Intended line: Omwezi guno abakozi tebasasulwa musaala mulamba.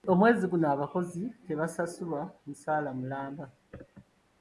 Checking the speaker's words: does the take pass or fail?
pass